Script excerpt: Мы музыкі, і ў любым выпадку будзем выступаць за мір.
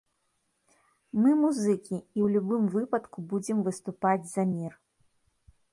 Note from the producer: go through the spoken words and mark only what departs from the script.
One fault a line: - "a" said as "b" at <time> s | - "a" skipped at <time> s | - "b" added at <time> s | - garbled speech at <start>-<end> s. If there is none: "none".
none